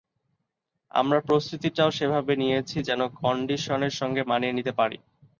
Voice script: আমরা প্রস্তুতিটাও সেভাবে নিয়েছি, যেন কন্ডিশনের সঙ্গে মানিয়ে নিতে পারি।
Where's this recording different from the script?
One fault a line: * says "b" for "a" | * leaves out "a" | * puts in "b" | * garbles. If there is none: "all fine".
all fine